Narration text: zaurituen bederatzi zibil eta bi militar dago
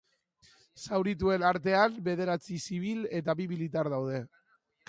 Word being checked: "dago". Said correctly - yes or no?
no